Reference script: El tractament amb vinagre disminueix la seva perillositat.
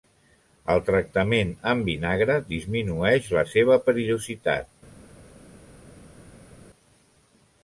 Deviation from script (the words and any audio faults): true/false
false